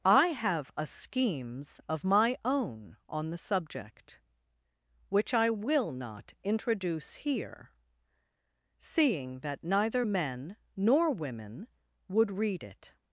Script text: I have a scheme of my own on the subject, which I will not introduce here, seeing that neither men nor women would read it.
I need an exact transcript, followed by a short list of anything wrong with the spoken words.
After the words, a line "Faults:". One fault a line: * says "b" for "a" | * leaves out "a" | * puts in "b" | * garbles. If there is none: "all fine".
I have a schemes of my own on the subject, which I will not introduce here, seeing that neither men nor women would read it.
Faults:
* says "schemes" for "scheme"